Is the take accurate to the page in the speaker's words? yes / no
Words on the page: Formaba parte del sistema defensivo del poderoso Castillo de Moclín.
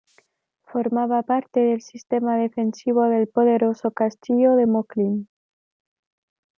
yes